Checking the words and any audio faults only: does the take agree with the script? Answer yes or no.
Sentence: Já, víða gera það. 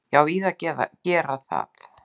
yes